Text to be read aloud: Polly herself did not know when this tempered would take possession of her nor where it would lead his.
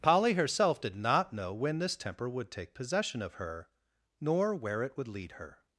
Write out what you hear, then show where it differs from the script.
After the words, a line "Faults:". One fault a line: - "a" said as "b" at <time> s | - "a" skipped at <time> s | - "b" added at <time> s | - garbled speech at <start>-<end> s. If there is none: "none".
Polly herself did not know when this temper would take possession of her nor where it would lead her.
Faults:
- "tempered" said as "temper" at 1.9 s
- "his" said as "her" at 5.3 s